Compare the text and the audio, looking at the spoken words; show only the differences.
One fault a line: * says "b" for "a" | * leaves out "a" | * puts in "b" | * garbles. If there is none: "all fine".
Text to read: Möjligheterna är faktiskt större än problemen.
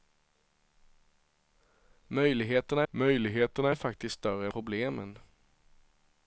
* puts in "möjligheterna"
* leaves out "än"